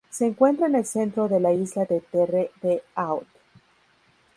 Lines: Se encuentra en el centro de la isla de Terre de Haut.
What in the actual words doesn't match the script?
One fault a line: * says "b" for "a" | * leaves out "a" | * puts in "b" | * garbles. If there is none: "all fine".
all fine